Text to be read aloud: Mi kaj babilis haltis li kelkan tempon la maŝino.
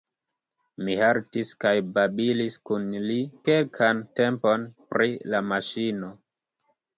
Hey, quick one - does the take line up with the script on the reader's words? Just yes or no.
no